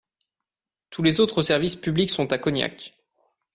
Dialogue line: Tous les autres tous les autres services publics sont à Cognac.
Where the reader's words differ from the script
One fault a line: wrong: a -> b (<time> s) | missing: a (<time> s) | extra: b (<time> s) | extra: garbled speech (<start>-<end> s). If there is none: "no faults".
missing: tous les autres (1.4 s)